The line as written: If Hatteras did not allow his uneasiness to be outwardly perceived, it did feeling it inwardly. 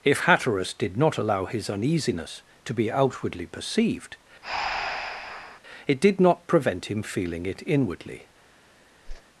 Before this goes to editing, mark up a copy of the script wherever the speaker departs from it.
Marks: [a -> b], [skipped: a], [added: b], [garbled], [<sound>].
If Hatteras did not allow his uneasiness to be outwardly perceived, [breath] it did [added: not prevent him] feeling it inwardly. [whoosh]